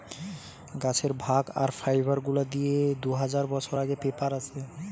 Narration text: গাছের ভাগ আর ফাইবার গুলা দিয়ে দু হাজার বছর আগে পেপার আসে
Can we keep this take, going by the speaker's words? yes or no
yes